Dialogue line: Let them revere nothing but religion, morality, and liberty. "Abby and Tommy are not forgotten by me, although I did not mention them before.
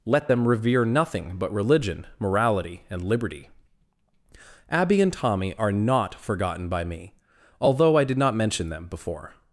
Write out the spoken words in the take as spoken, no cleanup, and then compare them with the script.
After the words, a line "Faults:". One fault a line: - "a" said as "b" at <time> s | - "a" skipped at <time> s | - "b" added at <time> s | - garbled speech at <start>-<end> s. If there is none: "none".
Let them revere nothing but religion, morality, and liberty. "Abby and Tommy are not forgotten by me, although I did not mention them before.
Faults:
none